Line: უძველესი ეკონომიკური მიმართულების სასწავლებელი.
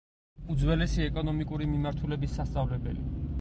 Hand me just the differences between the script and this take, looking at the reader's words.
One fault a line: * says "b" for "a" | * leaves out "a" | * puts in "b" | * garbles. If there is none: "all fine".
all fine